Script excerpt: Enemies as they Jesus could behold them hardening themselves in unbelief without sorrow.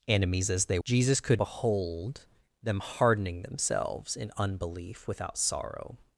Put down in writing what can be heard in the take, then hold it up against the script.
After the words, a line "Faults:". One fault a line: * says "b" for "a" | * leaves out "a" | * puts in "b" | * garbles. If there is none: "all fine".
Enemies as they Jesus could behold them hardening themselves in unbelief without sorrow.
Faults:
all fine